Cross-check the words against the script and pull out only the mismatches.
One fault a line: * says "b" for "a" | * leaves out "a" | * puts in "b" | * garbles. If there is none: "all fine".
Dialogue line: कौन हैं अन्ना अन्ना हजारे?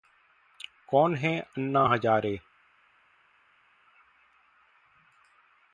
* leaves out "अन्ना"